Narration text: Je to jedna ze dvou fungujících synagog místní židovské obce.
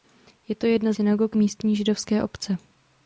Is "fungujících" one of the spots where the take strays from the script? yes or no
yes